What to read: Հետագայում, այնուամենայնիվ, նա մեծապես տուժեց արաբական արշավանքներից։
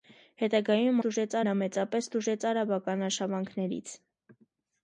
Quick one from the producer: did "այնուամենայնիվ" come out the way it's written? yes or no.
no